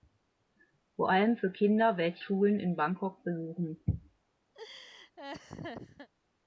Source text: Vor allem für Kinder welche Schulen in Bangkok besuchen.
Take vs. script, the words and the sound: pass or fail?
fail